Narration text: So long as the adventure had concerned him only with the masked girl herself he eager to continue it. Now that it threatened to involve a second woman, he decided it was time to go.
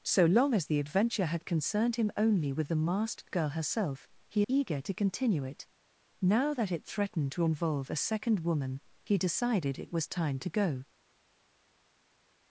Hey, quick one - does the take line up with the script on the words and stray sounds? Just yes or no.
yes